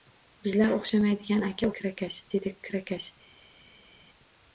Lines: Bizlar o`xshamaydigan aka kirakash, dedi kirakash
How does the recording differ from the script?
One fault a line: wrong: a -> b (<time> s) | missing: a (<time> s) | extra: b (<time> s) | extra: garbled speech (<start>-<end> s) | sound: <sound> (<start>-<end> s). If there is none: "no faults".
no faults